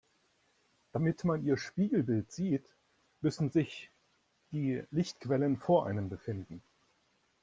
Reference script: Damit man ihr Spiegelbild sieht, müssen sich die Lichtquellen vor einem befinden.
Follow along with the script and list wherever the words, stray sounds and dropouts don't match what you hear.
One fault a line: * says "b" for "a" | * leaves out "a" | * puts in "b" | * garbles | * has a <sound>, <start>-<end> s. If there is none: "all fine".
all fine